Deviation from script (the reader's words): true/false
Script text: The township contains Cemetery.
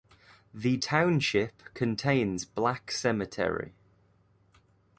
true